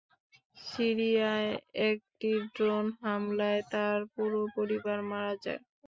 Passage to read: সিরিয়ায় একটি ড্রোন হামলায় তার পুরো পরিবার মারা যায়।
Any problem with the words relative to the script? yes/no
no